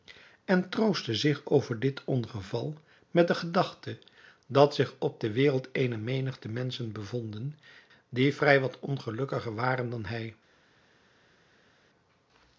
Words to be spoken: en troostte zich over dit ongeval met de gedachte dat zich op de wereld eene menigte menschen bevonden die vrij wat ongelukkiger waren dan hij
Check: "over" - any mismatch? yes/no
no